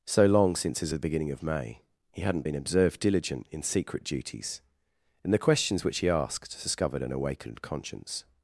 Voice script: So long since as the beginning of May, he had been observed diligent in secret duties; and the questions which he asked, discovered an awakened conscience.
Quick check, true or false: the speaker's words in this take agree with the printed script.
false